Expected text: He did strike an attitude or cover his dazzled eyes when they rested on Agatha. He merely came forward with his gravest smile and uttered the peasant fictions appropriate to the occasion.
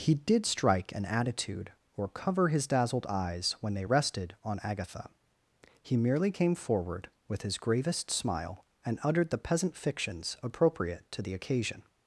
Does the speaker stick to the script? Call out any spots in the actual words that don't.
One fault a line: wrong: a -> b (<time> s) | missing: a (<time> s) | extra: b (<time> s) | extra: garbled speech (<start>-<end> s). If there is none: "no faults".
no faults